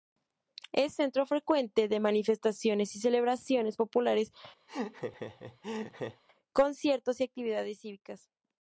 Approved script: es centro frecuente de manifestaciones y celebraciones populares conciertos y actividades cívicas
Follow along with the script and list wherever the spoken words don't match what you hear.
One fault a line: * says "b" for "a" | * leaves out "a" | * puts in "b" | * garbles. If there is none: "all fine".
all fine